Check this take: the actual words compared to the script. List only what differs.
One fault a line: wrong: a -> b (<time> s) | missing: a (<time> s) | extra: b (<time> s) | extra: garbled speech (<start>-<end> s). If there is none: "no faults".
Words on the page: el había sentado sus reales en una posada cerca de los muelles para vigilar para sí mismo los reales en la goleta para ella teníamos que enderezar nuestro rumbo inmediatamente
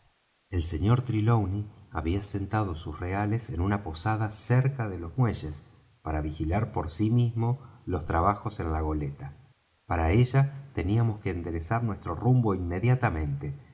extra: sr trelawney (0.6 s)
wrong: para -> por (6.7 s)
wrong: reales -> trabajos (8.1 s)